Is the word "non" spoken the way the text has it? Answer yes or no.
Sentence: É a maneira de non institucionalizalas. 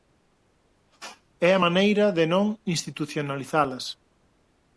yes